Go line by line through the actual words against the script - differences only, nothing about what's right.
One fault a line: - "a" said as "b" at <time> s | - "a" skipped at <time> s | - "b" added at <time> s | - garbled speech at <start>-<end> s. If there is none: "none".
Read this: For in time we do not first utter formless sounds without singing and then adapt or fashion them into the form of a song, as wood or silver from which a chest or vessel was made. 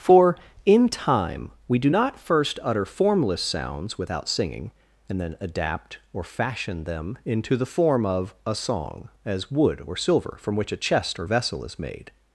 - "was" said as "is" at 11.6 s